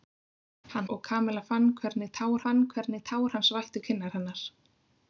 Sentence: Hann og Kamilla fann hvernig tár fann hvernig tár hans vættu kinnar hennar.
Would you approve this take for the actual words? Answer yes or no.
yes